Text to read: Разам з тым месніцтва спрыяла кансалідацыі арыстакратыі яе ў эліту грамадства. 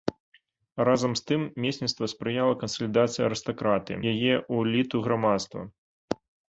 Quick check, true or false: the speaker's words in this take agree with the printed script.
true